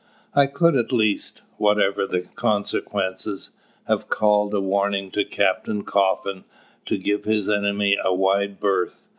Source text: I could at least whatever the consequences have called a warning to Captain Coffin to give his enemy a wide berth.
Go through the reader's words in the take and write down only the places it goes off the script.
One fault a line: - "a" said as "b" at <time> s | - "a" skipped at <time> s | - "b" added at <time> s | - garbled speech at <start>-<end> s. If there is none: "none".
none